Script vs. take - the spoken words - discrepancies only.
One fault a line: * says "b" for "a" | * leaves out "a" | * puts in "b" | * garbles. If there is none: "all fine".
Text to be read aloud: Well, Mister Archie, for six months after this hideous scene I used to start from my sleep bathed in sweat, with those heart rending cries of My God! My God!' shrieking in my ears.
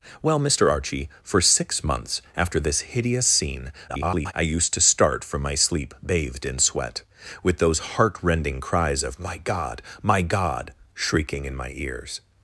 * garbles